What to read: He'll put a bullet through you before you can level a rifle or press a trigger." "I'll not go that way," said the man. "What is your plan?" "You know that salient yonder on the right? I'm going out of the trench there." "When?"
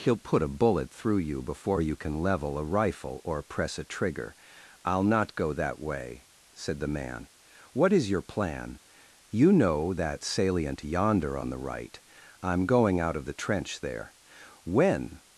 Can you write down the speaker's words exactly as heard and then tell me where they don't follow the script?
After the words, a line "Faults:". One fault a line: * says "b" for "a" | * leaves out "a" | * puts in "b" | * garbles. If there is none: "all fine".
He'll put a bullet through you before you can level a rifle or press a trigger." "I'll not go that way," said the man. "What is your plan?" "You know that salient yonder on the right? I'm going out of the trench there." "When?"
Faults:
all fine